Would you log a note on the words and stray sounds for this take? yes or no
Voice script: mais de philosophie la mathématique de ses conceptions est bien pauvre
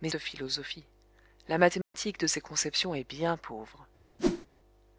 yes